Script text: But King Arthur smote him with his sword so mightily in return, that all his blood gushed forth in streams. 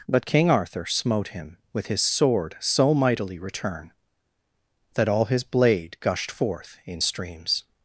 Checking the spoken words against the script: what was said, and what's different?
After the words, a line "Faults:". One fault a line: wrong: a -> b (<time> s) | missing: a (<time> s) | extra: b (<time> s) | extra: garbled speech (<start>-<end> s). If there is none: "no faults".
But King Arthur smote him with his sword so mightily return, that all his blade gushed forth in streams.
Faults:
missing: in (3.4 s)
wrong: blood -> blade (5.4 s)